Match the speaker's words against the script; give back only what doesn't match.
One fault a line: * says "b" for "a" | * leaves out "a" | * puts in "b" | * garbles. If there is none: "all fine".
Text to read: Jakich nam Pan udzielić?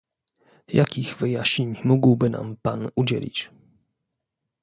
* puts in "wyjaśnień mógłby"